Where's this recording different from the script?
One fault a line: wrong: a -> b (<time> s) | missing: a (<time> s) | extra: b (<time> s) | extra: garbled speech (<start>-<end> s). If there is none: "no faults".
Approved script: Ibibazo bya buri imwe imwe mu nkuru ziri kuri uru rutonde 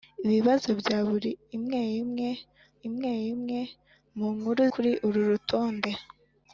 extra: imwe imwe (2.9 s)
missing: ziri (4.6 s)